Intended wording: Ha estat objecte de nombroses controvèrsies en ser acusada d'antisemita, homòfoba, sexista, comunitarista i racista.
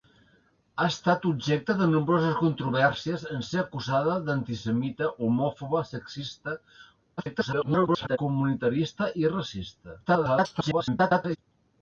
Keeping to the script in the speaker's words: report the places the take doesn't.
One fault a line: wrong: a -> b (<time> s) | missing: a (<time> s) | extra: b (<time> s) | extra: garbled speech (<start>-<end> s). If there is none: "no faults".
extra: garbled speech (7.2-8.2 s)
extra: garbled speech (10.1-11.4 s)